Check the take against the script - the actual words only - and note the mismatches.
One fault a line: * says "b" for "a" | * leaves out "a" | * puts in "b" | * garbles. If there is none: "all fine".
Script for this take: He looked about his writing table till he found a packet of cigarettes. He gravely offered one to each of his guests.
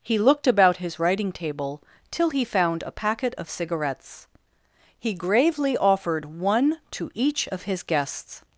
all fine